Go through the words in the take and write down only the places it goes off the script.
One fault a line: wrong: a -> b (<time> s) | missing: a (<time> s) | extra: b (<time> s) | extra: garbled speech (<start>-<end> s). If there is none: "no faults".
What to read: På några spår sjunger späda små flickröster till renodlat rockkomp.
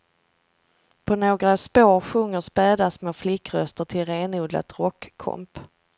no faults